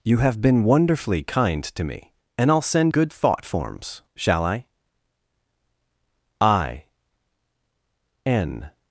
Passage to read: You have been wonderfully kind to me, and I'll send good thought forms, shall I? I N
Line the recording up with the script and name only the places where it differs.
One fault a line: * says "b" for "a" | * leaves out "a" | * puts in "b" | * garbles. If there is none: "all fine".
all fine